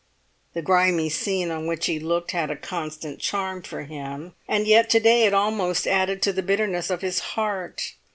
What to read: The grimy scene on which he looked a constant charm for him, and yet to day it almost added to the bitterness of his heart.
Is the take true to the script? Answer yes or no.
no